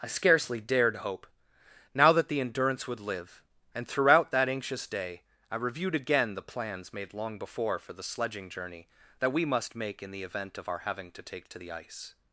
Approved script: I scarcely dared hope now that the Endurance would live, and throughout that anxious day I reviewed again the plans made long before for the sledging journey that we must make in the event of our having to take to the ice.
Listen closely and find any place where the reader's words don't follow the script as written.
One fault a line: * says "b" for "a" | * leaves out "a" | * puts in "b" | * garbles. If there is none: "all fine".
all fine